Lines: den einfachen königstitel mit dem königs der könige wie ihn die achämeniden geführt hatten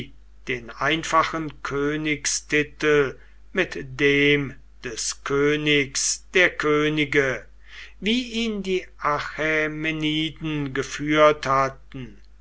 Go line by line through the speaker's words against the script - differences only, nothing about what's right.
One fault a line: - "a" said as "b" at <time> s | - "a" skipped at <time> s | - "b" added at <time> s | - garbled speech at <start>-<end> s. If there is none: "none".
- "des" added at 4.8 s